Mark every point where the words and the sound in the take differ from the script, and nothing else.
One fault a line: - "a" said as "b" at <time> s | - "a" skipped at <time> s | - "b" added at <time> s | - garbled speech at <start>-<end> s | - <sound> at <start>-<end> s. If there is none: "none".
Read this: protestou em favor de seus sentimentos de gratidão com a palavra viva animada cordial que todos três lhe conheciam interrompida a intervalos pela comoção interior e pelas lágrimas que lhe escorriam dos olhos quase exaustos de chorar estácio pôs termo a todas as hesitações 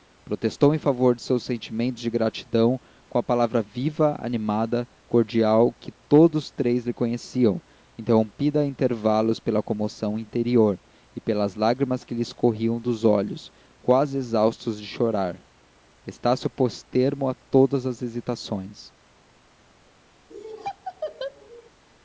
- laugh at 20.3-21.7 s